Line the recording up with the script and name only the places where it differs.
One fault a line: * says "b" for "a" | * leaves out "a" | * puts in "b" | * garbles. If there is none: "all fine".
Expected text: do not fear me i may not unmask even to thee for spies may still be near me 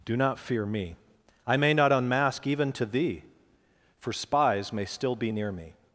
all fine